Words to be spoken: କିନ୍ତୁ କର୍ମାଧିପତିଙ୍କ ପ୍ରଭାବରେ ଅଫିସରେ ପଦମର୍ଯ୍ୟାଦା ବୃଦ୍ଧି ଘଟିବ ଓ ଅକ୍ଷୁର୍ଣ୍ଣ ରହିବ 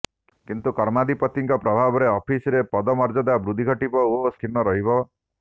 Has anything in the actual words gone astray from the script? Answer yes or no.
no